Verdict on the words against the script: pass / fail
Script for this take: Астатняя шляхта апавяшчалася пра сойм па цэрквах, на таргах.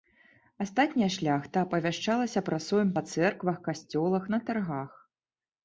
fail